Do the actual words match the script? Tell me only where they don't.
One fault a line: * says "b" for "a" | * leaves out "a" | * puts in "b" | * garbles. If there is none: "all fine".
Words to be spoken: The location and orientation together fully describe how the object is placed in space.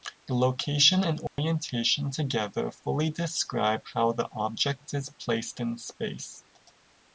all fine